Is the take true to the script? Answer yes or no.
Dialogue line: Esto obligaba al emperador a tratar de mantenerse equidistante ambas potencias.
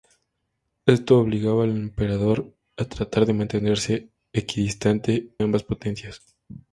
yes